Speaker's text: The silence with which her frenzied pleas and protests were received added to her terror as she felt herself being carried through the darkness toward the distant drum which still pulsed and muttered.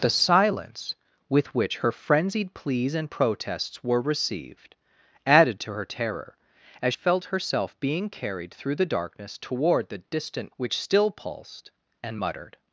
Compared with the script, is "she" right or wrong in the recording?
wrong